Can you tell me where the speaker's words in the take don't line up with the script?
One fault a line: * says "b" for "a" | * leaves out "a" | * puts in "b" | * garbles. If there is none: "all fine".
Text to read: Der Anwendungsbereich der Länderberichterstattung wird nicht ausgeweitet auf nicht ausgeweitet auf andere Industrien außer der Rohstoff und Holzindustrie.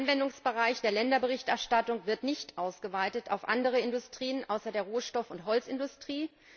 * leaves out "nicht ausgeweitet auf"